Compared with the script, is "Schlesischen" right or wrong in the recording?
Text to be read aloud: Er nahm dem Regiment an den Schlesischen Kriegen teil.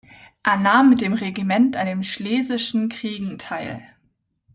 right